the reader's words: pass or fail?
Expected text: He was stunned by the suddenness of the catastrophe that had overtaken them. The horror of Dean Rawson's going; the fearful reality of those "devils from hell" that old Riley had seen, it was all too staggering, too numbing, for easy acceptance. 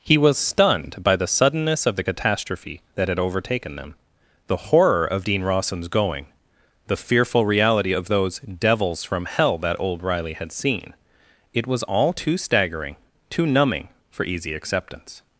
pass